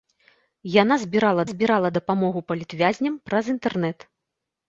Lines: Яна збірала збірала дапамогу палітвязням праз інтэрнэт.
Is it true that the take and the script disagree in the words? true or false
false